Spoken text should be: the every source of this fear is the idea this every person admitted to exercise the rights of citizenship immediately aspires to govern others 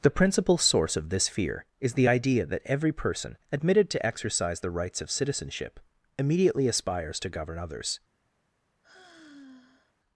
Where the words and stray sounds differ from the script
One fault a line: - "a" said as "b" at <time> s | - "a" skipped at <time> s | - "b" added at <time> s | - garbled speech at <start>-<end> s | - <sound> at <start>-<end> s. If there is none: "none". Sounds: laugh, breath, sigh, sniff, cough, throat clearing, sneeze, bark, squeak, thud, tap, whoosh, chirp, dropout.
- "every" said as "principal" at 0.1 s
- "this" said as "that" at 2.5 s
- sigh at 8.8-9.9 s